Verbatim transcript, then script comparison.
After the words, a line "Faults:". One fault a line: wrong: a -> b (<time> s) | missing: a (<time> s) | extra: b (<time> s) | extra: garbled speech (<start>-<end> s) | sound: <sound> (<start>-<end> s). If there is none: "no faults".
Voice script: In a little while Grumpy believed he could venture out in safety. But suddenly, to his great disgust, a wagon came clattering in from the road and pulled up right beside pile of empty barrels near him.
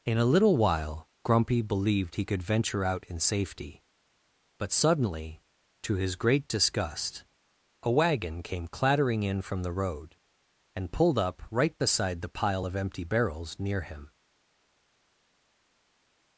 In a little while Grumpy believed he could venture out in safety. But suddenly, to his great disgust, a wagon came clattering in from the road and pulled up right beside the pile of empty barrels near him.
Faults:
extra: the (12.2 s)